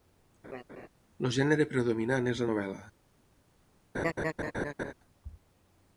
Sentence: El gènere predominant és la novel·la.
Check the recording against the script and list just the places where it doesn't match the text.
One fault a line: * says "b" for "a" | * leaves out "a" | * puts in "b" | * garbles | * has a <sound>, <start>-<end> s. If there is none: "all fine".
* has a laugh, 0.4-0.9 s
* has a laugh, 3.9-4.9 s